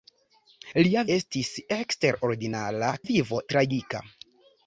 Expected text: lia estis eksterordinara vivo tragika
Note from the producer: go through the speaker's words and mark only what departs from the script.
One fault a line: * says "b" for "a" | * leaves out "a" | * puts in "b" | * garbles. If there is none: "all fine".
all fine